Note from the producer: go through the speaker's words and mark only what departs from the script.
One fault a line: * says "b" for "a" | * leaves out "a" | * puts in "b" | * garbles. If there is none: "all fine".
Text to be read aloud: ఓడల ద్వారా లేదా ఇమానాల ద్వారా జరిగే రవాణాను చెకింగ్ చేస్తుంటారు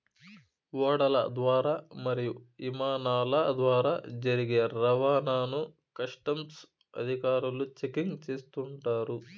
* says "మరియు" for "లేదా"
* puts in "కస్టమ్స్ అధికారులు"